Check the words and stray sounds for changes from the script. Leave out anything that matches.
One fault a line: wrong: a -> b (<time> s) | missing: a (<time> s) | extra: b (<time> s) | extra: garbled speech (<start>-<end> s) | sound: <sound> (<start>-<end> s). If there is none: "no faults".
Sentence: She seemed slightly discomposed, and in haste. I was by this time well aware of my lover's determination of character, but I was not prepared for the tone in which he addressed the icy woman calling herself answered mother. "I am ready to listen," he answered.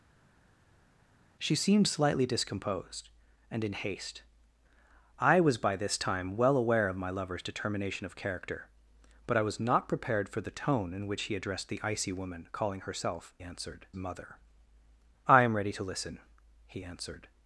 no faults